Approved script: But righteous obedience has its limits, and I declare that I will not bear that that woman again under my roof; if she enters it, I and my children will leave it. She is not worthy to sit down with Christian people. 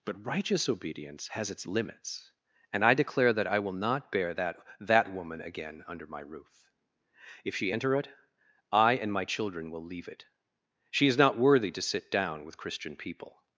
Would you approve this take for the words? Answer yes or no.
no